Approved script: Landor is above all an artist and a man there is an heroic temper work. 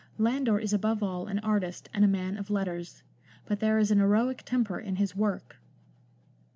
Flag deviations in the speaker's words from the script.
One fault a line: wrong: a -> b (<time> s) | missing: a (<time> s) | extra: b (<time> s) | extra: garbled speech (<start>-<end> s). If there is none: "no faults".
extra: of letters but (2.4 s)
extra: in his (4.8 s)